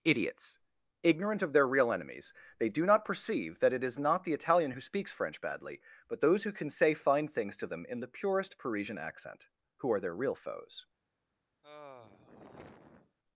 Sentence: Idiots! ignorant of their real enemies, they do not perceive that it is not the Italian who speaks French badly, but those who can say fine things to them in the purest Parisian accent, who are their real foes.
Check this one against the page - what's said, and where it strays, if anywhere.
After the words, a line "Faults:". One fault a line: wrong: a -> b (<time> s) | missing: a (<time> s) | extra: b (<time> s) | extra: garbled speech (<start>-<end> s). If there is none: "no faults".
Idiots! ignorant of their real enemies, they do not perceive that it is not the Italian who speaks French badly, but those who can say fine things to them in the purest Parisian accent, who are their real foes.
Faults:
no faults